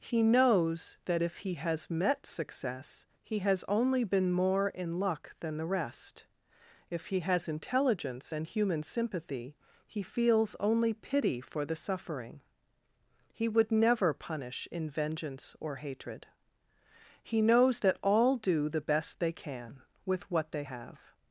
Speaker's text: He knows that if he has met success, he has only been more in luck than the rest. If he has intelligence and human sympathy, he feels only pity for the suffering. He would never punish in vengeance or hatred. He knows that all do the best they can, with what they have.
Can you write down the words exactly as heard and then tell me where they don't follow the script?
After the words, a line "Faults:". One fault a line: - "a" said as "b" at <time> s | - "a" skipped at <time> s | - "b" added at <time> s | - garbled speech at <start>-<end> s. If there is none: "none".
He knows that if he has met success, he has only been more in luck than the rest. If he has intelligence and human sympathy, he feels only pity for the suffering. He would never punish in vengeance or hatred. He knows that all do the best they can, with what they have.
Faults:
none